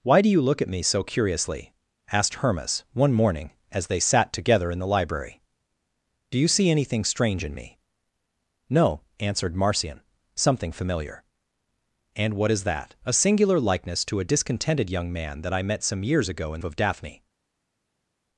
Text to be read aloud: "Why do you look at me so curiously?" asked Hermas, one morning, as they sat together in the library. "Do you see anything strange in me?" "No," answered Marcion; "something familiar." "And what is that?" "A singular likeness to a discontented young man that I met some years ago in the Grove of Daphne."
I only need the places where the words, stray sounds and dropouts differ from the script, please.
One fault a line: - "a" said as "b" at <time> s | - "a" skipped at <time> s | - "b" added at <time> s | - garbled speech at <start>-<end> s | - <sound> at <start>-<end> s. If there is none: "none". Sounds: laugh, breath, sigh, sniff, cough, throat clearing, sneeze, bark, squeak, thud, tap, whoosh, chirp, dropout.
- "the Grove" skipped at 16.6 s